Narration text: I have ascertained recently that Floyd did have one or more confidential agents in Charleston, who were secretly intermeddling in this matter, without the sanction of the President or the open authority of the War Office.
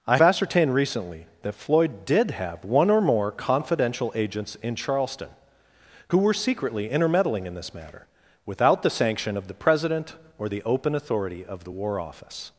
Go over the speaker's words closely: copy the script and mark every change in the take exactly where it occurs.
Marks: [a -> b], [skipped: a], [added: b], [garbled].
I [skipped: have] ascertained recently that Floyd did have one or more confidential agents in Charleston, who were secretly intermeddling in this matter, without the sanction of the President or the open authority of the War Office.